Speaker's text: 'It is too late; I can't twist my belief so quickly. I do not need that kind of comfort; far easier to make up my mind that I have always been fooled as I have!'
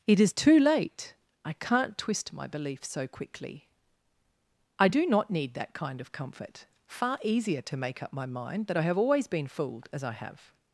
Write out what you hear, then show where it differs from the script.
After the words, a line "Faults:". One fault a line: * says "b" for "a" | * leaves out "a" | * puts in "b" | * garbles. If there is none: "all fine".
'It is too late; I can't twist my belief so quickly. I do not need that kind of comfort; far easier to make up my mind that I have always been fooled as I have!'
Faults:
all fine